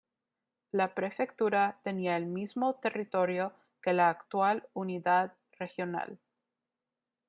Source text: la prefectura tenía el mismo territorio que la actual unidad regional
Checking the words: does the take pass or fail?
pass